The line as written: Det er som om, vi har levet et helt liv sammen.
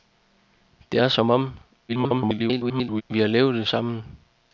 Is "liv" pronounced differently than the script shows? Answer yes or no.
yes